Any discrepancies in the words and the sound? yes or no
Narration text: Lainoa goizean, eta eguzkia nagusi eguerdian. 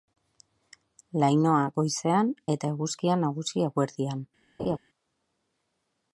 yes